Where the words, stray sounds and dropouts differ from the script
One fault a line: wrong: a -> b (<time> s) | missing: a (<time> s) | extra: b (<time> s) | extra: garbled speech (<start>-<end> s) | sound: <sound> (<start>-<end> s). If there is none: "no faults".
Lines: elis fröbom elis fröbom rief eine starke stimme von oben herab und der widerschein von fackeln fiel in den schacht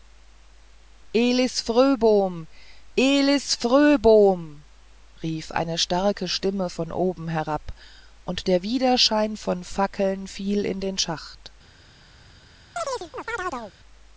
sound: chirp (12.8-13.7 s)